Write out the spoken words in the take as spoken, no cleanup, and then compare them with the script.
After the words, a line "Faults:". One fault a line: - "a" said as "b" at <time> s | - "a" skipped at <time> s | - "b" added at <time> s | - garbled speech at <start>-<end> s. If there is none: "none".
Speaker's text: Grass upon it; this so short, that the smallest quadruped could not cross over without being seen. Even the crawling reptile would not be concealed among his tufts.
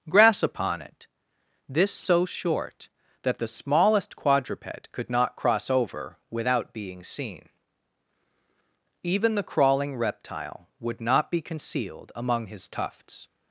Grass upon it; this so short, that the smallest quadruped could not cross over without being seen. Even the crawling reptile would not be concealed among his tufts.
Faults:
none